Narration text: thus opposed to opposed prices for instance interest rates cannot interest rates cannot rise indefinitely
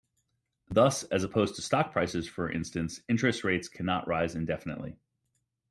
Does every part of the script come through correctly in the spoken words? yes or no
no